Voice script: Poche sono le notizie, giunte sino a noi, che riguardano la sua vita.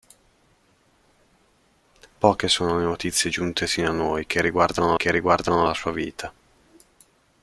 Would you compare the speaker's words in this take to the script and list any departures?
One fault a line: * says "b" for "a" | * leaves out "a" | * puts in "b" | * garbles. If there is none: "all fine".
* puts in "che riguardano"